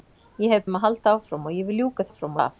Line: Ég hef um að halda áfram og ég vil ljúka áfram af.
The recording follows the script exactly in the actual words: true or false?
true